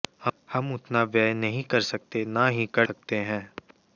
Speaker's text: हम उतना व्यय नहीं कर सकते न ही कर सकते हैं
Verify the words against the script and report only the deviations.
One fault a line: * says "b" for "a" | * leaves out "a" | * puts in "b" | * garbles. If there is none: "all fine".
all fine